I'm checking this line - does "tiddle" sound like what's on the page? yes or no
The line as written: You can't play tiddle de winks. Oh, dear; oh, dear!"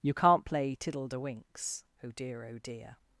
yes